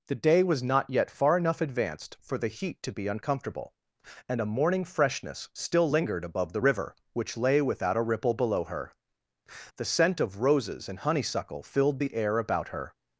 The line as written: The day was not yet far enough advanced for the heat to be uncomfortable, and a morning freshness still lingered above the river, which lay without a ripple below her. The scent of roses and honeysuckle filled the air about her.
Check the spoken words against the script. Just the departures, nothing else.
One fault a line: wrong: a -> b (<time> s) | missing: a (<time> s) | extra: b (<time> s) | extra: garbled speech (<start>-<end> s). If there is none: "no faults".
no faults